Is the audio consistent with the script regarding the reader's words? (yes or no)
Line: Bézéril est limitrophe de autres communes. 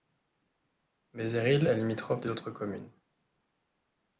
yes